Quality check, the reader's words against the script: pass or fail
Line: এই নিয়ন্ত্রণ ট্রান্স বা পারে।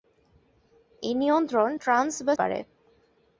pass